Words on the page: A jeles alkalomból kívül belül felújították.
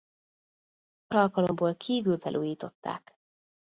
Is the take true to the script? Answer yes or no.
no